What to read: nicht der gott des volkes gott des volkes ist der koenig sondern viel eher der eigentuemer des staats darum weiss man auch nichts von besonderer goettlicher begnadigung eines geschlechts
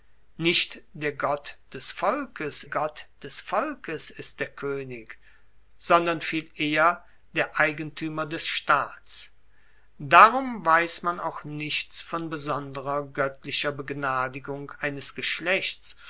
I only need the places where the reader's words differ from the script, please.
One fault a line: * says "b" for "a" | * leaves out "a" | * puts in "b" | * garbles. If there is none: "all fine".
all fine